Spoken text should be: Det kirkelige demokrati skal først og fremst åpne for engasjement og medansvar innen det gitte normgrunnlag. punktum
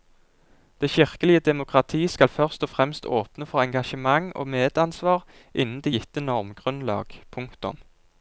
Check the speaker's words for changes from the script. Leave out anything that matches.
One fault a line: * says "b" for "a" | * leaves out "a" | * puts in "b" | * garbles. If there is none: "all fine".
all fine